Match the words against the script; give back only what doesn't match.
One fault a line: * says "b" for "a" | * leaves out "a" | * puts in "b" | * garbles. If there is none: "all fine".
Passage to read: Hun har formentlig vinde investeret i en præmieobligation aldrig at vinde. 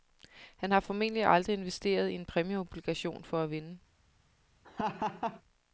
* says "Han" for "Hun"
* says "aldrig" for "vinde"
* says "for" for "aldrig"